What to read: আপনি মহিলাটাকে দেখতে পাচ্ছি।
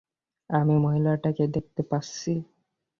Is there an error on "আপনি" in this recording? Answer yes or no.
yes